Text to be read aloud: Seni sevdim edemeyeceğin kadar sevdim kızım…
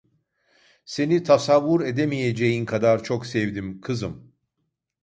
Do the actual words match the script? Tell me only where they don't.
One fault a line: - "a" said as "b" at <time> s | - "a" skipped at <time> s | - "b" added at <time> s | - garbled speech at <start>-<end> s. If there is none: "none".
- "sevdim" said as "tasavvur" at 1.2 s
- "çok" added at 3.0 s